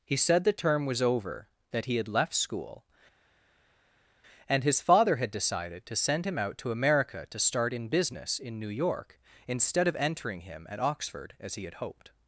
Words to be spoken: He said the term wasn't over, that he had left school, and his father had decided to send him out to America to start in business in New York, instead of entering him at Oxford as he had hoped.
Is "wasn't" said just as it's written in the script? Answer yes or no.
no